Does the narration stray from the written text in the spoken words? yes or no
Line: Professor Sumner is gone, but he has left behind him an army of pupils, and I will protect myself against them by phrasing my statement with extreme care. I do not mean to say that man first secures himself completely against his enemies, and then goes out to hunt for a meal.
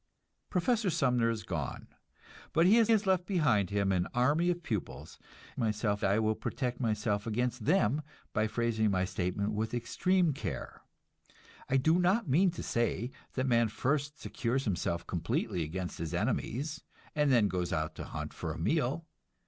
yes